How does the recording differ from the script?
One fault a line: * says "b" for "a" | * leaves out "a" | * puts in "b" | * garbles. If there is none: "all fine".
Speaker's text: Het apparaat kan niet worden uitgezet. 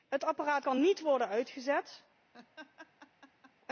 all fine